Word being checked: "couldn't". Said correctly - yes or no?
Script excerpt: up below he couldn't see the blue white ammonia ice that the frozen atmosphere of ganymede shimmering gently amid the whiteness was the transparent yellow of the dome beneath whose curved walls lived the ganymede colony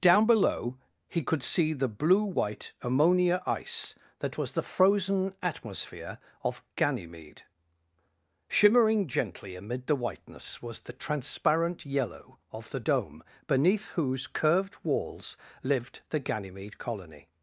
no